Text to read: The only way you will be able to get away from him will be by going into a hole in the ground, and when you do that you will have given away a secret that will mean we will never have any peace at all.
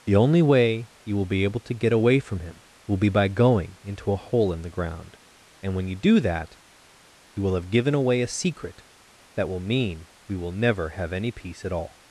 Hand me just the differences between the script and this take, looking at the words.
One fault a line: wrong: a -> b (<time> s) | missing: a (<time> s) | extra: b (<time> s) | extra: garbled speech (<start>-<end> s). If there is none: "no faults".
no faults